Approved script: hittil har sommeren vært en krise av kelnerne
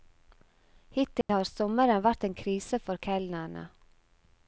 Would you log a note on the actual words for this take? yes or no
yes